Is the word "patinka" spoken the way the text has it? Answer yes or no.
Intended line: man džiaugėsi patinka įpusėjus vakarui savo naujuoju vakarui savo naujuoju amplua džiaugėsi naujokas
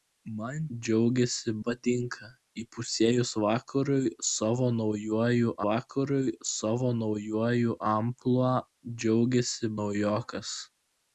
yes